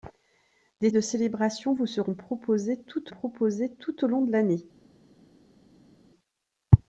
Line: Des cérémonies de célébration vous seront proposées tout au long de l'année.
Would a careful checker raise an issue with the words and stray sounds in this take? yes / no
yes